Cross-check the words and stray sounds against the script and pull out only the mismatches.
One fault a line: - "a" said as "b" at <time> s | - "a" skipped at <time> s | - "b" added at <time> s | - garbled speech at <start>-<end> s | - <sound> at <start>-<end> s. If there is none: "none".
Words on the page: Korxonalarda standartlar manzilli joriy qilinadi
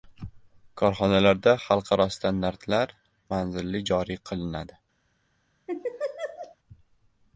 - "xalqaro" added at 1.6 s
- laugh at 5.7-6.6 s